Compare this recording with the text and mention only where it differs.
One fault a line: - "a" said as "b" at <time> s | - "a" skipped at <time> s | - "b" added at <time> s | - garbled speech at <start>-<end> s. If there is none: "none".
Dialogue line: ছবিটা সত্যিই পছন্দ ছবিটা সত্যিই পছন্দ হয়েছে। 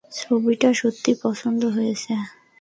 - "ছবিটা সত্যিই পছন্দ" skipped at 1.6 s